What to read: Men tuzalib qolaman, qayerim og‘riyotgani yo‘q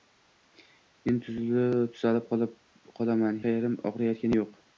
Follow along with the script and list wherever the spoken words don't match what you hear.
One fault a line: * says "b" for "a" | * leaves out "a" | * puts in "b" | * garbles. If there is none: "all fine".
all fine